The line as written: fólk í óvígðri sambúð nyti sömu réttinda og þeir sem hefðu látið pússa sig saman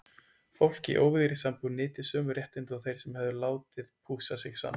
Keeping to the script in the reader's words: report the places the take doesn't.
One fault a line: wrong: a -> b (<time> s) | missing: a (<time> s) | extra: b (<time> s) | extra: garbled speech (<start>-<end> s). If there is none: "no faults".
no faults